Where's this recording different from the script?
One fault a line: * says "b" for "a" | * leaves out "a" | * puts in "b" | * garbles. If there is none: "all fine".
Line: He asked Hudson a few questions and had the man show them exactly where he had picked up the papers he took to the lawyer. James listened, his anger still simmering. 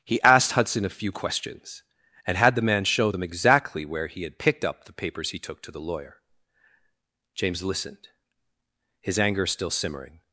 all fine